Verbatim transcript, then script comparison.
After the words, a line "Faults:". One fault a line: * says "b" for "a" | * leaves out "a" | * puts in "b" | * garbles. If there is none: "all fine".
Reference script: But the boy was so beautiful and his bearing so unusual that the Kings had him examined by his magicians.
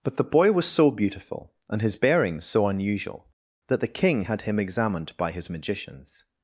But the boy was so beautiful and his bearing so unusual that the King had him examined by his magicians.
Faults:
* says "King" for "Kings"